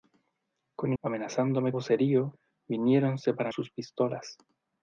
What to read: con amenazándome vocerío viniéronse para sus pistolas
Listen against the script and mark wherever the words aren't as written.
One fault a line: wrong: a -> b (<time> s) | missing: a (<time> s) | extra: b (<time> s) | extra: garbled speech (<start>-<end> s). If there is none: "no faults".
no faults